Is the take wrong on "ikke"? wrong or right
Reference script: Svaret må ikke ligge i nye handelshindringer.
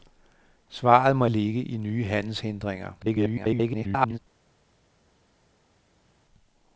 wrong